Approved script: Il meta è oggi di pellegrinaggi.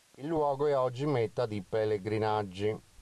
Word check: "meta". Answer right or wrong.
wrong